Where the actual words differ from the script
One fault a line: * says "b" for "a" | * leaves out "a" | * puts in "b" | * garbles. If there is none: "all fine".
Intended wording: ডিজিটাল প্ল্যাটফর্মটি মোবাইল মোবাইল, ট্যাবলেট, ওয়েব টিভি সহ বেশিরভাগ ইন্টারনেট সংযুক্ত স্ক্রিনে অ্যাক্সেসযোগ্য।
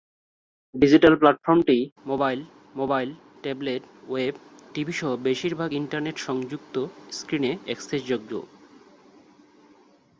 all fine